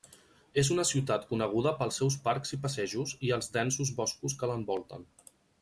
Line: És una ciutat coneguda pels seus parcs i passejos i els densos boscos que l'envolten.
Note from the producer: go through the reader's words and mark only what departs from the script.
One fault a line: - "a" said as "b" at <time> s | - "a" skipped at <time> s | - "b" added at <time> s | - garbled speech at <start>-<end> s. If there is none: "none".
none